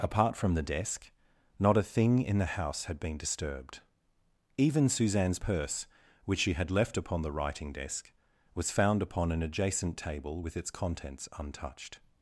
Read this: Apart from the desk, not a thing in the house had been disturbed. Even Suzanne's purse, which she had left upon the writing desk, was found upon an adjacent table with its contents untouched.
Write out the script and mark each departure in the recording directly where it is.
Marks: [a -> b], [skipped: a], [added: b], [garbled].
Apart from the desk, not a thing in the house had been disturbed. Even Suzanne's purse, which she had left upon the writing desk, was found upon an adjacent table with its contents untouched.